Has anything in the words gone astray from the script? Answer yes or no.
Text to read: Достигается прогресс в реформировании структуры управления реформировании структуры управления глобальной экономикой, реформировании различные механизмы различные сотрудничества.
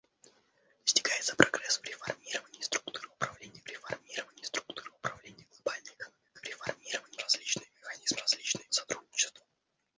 no